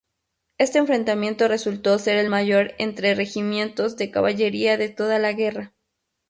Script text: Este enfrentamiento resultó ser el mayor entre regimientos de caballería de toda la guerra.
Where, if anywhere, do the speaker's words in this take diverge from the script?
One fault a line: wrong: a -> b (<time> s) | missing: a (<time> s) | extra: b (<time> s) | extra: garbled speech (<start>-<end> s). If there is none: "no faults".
no faults